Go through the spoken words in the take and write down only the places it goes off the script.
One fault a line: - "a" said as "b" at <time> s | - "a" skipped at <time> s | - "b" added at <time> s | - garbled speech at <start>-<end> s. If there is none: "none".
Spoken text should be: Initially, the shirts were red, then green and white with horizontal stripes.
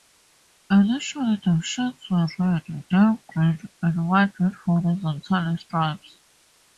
none